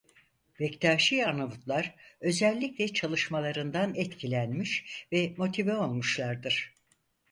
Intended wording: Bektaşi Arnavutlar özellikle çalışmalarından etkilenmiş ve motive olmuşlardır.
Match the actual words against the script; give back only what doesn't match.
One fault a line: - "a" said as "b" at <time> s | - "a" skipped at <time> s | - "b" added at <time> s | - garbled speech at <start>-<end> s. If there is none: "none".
none